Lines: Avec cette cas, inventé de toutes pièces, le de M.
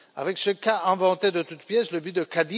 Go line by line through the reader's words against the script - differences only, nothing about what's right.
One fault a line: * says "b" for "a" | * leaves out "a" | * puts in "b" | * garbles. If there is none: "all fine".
* says "ce" for "cette"
* puts in "but"